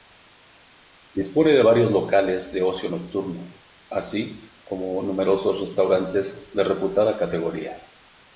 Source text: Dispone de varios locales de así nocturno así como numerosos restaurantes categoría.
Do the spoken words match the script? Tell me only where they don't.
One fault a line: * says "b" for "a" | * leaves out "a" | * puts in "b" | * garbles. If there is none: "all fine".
* says "ocio" for "así"
* puts in "de reputada"